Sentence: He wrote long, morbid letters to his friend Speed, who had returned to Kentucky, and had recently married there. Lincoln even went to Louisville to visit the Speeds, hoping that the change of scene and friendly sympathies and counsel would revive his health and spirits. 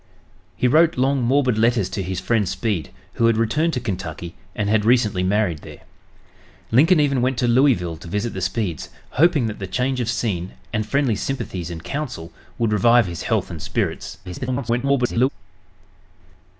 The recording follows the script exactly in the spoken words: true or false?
false